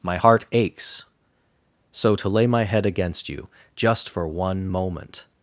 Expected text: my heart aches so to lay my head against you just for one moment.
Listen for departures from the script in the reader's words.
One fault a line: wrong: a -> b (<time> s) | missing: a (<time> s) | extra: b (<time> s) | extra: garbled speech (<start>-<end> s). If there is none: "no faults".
no faults